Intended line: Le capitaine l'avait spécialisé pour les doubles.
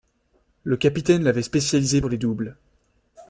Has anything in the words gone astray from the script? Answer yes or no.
no